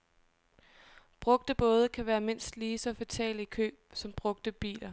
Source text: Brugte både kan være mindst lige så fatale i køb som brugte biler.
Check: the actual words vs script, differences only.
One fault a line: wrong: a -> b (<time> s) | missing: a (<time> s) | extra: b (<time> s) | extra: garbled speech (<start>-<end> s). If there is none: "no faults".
no faults